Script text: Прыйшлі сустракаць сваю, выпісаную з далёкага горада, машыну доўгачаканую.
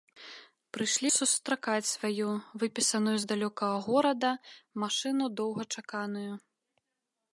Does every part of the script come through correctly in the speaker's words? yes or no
yes